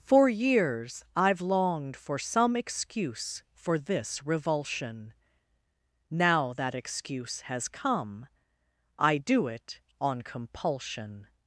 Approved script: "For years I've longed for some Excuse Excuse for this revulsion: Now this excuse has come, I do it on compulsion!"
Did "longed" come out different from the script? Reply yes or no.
no